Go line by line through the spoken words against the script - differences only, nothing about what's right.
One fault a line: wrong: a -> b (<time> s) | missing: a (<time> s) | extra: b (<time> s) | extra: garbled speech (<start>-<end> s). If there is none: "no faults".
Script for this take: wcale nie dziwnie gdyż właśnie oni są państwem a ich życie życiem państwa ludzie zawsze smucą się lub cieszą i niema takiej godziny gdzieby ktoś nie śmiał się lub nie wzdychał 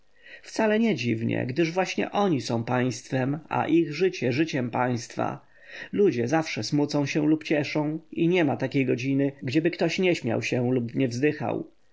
no faults